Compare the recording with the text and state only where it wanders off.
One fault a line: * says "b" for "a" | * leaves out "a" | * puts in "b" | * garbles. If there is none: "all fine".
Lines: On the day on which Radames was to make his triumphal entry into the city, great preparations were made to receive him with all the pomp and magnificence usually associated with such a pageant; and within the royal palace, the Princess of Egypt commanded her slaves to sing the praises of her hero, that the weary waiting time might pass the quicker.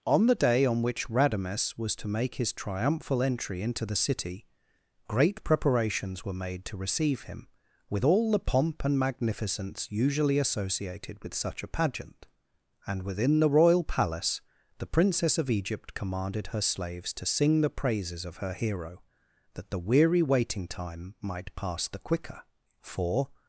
* puts in "For"